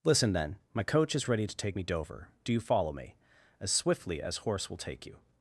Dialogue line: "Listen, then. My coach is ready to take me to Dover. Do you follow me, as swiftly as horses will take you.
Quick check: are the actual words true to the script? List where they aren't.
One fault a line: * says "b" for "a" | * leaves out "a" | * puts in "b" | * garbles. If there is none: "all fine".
* leaves out "to"
* says "horse" for "horses"